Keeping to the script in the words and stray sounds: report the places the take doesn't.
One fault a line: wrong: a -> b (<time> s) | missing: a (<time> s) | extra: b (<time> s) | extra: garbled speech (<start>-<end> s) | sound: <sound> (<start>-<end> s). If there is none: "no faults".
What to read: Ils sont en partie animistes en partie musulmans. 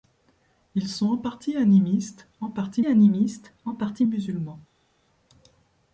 extra: animistes en partie (2.8 s)